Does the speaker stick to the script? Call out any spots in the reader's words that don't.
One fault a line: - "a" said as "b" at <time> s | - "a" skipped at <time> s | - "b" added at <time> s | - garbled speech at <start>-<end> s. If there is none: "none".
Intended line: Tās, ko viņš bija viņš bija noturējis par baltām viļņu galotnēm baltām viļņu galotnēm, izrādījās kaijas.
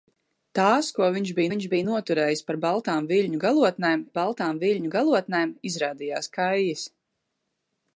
none